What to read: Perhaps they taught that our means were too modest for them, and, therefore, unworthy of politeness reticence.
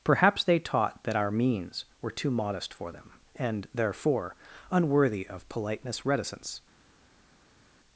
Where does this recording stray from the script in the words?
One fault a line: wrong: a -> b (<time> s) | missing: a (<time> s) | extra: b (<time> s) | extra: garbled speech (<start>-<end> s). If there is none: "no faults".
no faults